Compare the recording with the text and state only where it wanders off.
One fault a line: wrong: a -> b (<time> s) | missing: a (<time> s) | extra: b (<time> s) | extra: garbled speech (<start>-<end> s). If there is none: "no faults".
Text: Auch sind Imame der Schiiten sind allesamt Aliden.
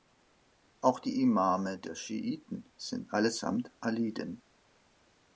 wrong: sind -> die (1.0 s)